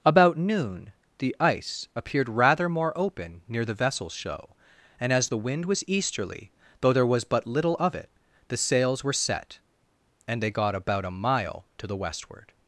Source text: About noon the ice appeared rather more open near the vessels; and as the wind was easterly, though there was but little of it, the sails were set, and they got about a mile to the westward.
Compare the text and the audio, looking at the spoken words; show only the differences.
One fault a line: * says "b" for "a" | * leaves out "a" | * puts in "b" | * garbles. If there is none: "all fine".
* puts in "show"